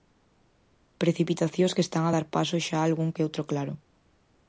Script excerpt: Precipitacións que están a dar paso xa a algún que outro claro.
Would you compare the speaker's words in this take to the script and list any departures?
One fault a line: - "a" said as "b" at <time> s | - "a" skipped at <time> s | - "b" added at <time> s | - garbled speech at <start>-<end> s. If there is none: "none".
none